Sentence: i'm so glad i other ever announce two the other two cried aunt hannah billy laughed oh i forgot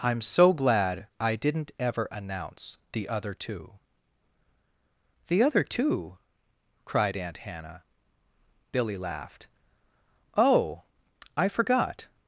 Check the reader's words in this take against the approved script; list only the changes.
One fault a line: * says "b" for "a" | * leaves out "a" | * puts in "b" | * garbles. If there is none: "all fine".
* says "didn't" for "other"
* puts in "the other"